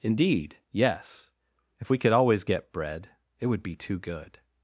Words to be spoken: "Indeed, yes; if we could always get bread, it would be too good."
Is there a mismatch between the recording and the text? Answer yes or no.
no